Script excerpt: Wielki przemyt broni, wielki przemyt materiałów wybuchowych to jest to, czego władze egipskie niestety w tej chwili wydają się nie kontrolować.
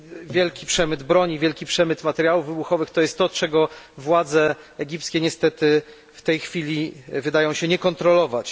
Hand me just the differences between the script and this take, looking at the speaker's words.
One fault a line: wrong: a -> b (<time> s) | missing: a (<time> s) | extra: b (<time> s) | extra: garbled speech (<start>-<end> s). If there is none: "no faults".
no faults